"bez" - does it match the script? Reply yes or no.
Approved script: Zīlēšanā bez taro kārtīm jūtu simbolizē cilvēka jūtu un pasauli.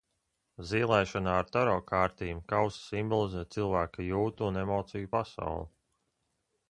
no